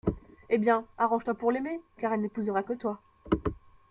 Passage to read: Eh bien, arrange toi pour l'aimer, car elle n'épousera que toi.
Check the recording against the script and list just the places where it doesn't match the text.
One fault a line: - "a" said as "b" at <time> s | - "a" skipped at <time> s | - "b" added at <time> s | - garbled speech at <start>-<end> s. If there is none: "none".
none